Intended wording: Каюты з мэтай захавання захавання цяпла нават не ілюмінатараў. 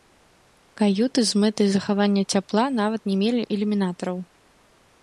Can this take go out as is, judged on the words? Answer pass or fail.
fail